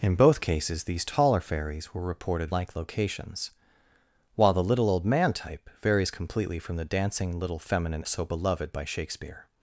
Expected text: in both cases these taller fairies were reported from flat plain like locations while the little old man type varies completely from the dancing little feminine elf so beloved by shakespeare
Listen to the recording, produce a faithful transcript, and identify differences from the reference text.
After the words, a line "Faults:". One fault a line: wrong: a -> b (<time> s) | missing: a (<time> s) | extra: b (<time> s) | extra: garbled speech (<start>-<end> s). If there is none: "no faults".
in both cases these taller fairies were reported like locations while the little old man type varies completely from the dancing little feminine so beloved by shakespeare
Faults:
missing: from flat plain (2.5 s)
missing: elf (8.0 s)